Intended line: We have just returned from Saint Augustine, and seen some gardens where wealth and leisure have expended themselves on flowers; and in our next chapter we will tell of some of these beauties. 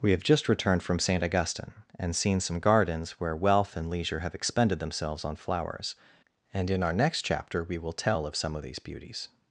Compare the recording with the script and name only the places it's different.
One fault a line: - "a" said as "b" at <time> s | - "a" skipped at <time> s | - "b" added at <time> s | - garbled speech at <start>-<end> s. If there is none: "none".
none